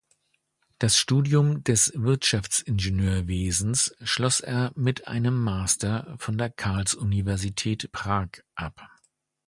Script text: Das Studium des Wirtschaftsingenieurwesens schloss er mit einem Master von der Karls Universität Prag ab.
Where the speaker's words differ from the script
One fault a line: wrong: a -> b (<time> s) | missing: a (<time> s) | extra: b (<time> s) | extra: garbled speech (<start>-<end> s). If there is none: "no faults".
no faults